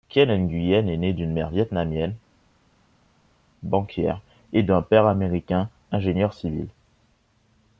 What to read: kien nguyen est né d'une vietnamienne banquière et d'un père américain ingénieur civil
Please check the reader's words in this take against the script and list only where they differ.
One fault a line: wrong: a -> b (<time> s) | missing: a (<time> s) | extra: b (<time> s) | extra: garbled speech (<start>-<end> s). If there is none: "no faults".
extra: mère (1.3 s)